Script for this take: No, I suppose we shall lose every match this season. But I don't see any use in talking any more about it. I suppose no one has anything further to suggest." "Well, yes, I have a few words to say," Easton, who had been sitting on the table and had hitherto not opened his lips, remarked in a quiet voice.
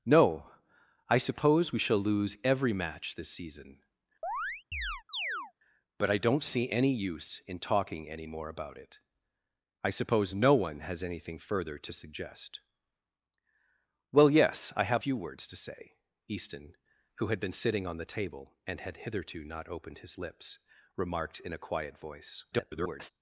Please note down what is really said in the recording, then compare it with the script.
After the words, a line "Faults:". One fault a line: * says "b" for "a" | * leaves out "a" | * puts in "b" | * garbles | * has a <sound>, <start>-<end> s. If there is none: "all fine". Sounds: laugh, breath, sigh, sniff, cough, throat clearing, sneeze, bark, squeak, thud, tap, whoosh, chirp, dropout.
No, I suppose we shall lose every match this season. But I don't see any use in talking any more about it. I suppose no one has anything further to suggest." "Well, yes, I have few words to say," Easton, who had been sitting on the table and had hitherto not opened his lips, remarked in a quiet voice. [garbled]
Faults:
* has a chirp, 4.2-5.5 s
* leaves out "a"
* garbles